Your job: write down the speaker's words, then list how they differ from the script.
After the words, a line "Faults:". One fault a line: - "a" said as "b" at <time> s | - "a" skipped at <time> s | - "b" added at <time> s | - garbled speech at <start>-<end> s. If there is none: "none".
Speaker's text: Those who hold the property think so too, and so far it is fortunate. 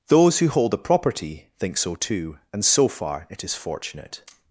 Those who hold the property think so too, and so far it is fortunate.
Faults:
none